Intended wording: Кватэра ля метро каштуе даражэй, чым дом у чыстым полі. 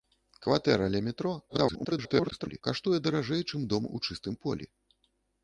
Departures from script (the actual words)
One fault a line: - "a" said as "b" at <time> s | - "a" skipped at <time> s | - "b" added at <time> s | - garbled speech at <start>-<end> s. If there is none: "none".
- garbled speech at 1.5-2.6 s